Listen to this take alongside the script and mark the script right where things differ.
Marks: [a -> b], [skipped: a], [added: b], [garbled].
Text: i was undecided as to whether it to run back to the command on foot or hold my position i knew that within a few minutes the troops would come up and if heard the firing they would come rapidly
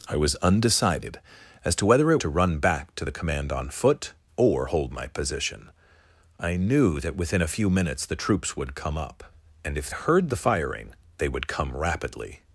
i was undecided as to whether it to run back to the command on foot or hold my position i knew that within a few minutes the troops would come up and if heard the firing they would come rapidly